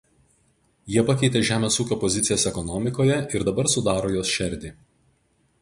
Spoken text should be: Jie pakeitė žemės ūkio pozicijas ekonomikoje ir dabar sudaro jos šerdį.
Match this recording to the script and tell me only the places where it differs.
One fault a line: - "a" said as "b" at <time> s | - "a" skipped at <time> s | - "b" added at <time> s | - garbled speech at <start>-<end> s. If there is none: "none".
none